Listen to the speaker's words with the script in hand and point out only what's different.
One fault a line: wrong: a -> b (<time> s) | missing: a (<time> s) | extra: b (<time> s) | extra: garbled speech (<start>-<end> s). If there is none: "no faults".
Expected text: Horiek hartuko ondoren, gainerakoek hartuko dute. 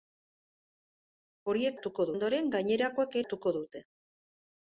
no faults